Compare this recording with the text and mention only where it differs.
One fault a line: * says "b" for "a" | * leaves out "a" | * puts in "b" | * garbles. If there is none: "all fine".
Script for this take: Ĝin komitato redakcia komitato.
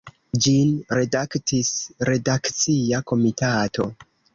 * says "redaktis" for "komitato"